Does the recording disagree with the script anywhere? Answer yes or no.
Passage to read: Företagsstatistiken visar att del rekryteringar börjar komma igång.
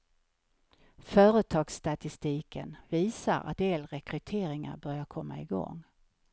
no